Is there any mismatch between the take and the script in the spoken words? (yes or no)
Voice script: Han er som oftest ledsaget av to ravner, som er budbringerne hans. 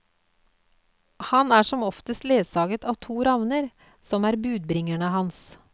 no